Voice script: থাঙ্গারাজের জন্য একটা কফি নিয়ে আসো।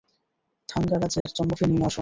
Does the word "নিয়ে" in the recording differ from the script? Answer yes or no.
no